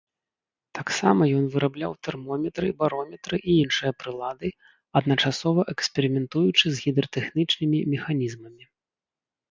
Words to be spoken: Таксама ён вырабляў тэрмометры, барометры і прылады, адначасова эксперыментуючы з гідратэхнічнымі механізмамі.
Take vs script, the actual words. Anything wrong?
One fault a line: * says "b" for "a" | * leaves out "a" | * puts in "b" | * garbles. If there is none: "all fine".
* puts in "іншыя"